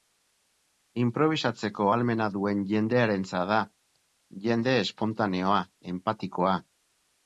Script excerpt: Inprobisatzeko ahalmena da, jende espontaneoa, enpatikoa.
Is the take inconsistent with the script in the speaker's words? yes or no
yes